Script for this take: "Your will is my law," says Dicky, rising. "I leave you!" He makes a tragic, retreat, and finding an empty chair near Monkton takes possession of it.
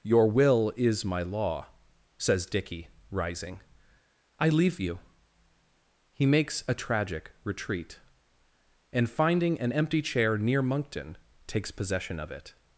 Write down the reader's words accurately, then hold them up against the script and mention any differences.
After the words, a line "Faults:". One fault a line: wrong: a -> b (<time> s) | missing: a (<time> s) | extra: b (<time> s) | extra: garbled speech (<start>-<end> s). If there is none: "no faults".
"Your will is my law," says Dicky, rising. "I leave you!" He makes a tragic, retreat, and finding an empty chair near Monkton takes possession of it.
Faults:
no faults